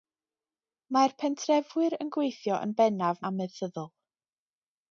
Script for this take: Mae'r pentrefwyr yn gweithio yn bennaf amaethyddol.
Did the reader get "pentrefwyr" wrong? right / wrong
right